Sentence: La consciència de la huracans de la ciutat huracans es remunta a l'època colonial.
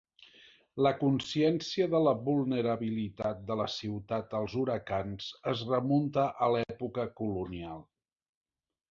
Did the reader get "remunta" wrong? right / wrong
right